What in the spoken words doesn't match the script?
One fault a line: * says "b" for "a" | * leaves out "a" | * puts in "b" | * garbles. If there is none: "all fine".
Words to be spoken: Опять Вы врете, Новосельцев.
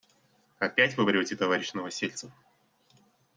* puts in "товарищ"